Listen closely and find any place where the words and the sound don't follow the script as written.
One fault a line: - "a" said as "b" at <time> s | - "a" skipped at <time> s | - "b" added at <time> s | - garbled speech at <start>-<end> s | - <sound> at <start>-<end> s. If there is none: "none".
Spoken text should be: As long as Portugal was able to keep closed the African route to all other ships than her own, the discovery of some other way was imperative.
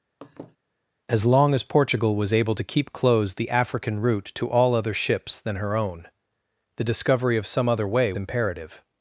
- laugh at 0.2-0.6 s
- "was" skipped at 8.1 s